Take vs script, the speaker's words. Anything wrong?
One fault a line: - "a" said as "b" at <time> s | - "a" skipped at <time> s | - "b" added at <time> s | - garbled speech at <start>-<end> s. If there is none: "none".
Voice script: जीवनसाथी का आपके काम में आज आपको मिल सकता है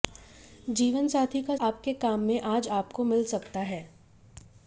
none